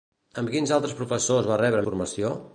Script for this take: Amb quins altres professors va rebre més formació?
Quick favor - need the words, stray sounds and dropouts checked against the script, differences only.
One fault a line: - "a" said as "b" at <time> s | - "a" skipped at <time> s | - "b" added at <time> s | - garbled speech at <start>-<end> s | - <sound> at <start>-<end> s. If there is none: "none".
- "més" skipped at 1.9 s